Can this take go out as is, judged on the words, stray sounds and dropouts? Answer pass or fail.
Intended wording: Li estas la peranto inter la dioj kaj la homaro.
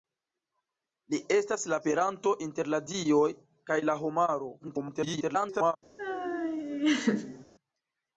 fail